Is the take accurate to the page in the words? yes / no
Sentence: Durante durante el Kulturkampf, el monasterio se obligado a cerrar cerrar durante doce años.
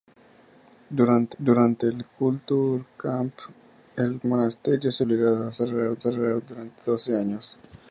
yes